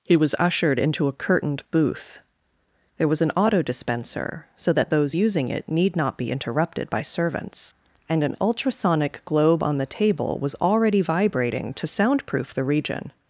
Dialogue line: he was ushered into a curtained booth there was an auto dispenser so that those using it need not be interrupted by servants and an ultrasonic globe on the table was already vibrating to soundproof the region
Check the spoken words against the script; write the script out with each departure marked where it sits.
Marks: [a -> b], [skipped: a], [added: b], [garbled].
he was ushered into a curtained booth there was an auto dispenser so that those using it need not be interrupted by servants and an ultrasonic globe on the table was already vibrating to soundproof the region